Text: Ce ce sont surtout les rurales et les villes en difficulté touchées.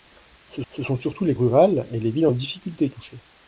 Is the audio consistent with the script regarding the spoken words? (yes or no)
yes